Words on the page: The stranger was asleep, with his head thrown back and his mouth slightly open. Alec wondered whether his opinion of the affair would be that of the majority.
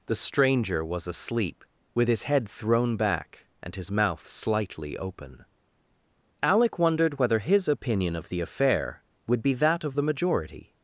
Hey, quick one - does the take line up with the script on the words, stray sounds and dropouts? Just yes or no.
yes